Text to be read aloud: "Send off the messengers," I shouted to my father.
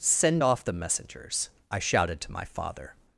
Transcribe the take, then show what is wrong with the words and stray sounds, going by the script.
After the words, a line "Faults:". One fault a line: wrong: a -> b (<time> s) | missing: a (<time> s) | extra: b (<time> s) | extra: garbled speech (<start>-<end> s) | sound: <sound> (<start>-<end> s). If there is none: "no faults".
"Send off the messengers," I shouted to my father.
Faults:
no faults